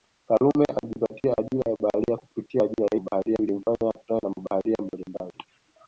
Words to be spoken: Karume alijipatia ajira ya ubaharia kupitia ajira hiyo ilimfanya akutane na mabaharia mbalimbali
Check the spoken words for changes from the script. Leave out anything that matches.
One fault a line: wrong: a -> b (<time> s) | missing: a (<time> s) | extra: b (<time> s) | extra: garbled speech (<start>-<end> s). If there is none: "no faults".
wrong: hiyo -> mabaharia (3.0 s)